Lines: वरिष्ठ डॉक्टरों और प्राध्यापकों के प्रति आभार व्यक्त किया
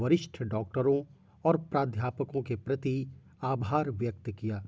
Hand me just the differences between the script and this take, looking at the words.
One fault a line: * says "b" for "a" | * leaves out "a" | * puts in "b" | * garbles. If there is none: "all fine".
all fine